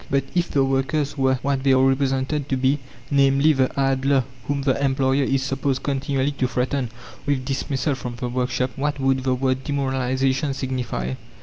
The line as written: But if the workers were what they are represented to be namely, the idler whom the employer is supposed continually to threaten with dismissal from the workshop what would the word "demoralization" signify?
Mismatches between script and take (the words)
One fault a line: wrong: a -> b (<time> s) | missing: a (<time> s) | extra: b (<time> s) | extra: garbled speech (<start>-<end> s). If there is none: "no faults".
no faults